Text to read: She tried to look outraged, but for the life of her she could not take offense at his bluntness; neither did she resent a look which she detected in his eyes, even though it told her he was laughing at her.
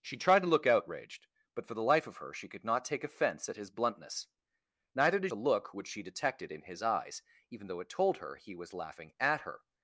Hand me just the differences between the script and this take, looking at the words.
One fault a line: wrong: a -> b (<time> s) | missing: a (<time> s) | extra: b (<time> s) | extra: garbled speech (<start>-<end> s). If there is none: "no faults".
missing: she resent (5.3 s)